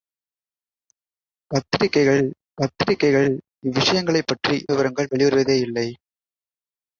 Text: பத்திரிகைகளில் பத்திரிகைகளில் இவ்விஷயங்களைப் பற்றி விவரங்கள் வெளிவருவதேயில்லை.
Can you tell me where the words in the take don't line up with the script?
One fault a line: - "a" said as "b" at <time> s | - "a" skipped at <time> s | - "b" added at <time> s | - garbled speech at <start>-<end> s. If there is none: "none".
none